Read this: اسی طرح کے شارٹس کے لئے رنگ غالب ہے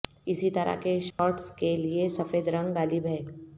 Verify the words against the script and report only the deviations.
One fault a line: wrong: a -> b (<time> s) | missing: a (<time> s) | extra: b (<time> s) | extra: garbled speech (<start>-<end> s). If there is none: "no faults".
extra: سفید (2.1 s)